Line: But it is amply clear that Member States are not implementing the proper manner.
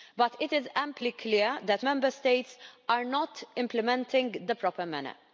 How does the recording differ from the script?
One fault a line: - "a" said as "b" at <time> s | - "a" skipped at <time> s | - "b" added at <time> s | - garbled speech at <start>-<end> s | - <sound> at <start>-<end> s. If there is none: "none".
none